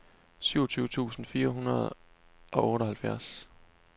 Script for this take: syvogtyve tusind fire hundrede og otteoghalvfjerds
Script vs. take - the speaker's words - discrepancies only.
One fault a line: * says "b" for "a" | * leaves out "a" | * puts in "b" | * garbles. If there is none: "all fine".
all fine